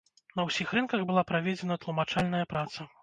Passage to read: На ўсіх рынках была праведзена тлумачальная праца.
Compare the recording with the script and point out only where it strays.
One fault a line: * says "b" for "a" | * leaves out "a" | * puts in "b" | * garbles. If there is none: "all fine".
all fine